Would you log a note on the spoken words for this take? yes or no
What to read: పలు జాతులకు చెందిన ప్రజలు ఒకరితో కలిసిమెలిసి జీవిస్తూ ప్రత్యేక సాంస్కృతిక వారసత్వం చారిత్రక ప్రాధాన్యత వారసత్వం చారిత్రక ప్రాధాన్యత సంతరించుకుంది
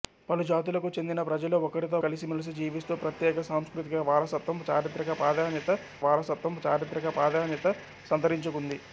no